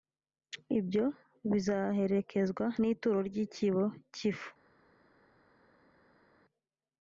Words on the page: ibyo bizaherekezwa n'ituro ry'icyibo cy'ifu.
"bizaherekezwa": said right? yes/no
yes